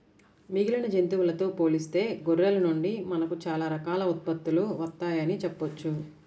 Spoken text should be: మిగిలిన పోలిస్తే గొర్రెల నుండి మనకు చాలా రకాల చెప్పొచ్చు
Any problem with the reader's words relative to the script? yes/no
yes